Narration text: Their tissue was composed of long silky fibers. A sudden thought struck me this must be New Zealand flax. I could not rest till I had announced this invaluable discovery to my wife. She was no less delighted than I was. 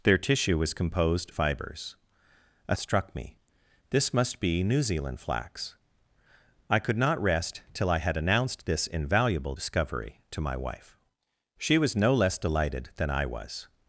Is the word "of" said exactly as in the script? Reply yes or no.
no